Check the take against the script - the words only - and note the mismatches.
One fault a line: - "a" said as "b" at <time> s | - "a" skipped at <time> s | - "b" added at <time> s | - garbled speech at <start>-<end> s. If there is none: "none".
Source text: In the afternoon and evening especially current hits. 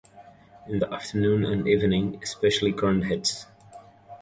none